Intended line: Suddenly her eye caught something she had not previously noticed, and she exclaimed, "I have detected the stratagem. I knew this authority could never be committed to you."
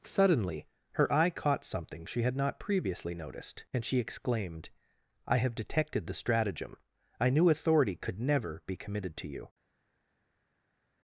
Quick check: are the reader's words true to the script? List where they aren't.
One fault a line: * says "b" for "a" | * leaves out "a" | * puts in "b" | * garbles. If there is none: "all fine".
* leaves out "this"